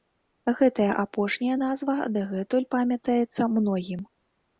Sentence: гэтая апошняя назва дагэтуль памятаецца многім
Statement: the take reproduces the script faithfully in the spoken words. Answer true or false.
true